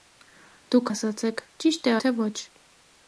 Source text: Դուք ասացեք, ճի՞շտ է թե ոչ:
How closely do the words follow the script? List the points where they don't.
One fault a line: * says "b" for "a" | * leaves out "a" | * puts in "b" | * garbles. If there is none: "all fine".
all fine